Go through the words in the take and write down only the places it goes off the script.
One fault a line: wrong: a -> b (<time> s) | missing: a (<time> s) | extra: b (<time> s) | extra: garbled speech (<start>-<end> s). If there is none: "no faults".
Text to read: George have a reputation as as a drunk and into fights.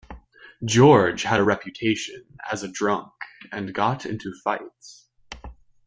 wrong: have -> had (1.2 s)
missing: as (2.6 s)
extra: got (3.7 s)